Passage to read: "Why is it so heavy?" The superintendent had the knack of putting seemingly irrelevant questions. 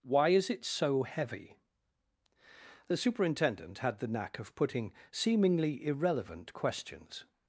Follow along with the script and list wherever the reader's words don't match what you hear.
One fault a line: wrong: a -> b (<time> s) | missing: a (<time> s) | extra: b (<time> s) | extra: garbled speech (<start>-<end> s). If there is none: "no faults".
no faults